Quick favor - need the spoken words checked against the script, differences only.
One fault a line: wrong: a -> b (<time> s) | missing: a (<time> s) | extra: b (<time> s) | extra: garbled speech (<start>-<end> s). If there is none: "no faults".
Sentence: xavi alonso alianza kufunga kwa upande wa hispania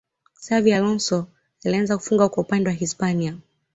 no faults